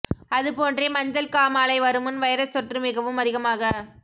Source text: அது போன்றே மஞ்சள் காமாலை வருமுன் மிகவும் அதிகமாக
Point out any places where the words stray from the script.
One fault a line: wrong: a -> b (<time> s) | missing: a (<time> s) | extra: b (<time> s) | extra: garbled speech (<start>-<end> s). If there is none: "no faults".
extra: வைரஸ் தொற்று (2.2 s)